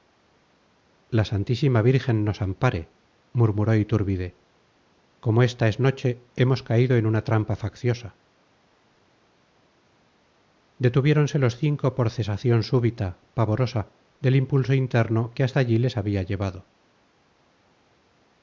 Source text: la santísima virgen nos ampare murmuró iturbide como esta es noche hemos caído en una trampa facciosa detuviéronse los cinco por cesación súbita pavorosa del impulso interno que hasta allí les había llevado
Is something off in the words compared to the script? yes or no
no